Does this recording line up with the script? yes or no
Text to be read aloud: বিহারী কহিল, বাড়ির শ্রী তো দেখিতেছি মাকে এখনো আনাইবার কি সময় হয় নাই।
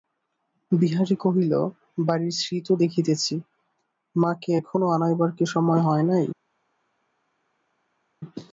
yes